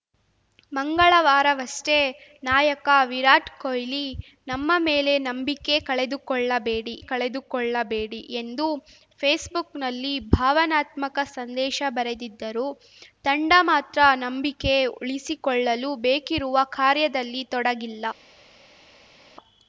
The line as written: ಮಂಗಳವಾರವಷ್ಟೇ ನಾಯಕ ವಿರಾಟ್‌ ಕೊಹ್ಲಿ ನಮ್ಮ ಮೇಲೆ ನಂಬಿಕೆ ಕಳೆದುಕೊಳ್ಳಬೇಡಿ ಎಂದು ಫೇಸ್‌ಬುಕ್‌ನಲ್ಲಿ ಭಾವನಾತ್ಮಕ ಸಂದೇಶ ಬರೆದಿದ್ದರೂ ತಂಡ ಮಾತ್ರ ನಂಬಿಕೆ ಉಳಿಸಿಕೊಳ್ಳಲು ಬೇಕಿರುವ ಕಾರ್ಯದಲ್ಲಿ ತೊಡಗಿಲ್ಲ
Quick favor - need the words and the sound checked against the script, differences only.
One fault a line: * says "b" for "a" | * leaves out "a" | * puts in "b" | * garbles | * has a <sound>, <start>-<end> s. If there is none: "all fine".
* puts in "ಕಳೆದುಕೊಳ್ಳಬೇಡಿ"